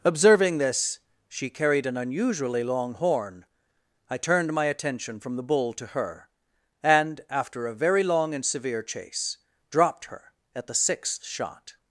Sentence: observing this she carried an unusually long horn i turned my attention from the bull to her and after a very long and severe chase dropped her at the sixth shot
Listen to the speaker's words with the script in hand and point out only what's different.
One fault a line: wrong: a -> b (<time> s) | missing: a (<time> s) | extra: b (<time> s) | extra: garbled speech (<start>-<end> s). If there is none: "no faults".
no faults